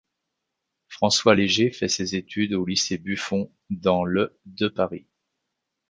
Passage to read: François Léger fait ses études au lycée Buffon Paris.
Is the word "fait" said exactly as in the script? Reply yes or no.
yes